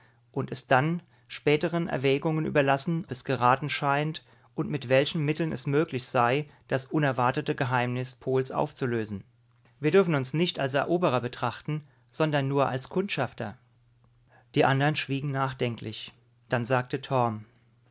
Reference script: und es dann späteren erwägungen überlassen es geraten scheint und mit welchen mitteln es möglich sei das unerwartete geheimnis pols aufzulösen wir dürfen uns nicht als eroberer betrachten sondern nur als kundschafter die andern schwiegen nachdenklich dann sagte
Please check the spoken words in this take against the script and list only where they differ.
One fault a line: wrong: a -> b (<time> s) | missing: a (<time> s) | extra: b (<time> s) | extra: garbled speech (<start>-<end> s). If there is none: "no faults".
no faults